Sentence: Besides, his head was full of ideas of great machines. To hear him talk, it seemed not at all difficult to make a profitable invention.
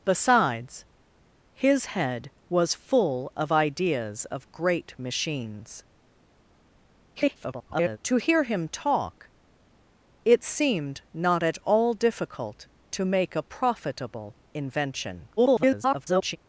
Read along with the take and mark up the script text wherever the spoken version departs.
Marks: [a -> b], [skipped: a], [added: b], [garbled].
Besides, his head was full of ideas of great machines. [garbled] To hear him talk, it seemed not at all difficult to make a profitable invention. [garbled]